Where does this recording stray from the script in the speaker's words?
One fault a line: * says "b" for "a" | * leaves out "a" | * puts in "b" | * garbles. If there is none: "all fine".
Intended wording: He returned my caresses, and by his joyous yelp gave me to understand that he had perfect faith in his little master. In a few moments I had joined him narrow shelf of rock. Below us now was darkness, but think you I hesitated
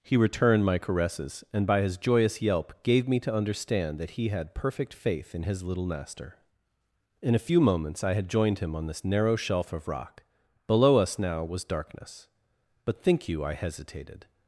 * puts in "on this"